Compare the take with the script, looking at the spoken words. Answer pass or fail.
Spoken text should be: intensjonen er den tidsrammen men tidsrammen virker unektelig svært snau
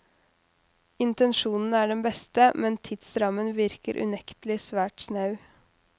fail